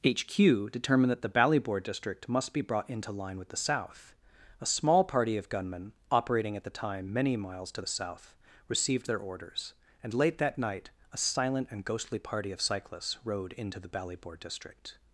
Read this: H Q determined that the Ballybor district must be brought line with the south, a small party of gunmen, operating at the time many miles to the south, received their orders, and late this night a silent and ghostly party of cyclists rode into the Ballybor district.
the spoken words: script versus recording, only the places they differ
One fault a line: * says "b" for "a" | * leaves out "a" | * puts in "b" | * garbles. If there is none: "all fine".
* puts in "into"
* says "that" for "this"